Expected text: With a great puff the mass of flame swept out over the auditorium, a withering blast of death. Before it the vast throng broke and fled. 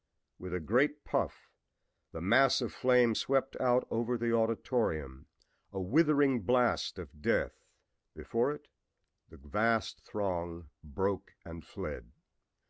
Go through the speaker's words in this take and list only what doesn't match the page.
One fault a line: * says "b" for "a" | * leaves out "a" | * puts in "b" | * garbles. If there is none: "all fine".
all fine